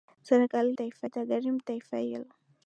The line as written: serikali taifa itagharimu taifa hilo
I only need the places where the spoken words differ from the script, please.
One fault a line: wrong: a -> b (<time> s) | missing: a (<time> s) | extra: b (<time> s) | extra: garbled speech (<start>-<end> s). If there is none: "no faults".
no faults